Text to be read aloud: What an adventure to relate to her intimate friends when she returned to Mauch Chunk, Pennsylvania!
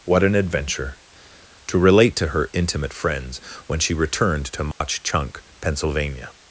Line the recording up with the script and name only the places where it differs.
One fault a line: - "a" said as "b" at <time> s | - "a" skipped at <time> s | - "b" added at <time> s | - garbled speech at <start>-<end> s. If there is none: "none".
none